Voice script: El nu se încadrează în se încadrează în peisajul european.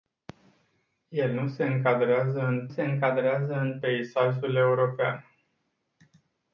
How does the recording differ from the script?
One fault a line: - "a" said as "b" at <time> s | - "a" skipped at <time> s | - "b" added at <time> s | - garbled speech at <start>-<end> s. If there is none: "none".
none